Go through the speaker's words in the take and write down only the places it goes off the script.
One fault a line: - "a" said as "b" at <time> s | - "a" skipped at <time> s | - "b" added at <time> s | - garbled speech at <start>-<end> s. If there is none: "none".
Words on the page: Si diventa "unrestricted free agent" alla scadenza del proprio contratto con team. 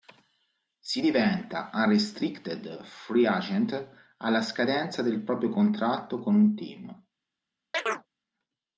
- "un" added at 6.4 s